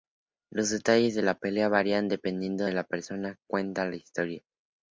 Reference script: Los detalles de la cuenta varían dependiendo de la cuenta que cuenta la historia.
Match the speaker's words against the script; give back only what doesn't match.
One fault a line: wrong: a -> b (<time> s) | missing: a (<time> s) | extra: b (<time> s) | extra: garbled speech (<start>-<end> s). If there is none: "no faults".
wrong: cuenta -> pelea (1.4 s)
wrong: cuenta -> persona (2.8 s)